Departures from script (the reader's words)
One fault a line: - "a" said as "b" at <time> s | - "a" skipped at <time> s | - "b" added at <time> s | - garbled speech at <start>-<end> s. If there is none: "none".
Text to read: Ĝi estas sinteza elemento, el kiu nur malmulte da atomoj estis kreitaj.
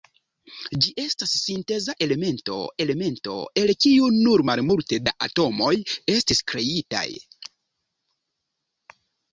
- "elemento" added at 2.8 s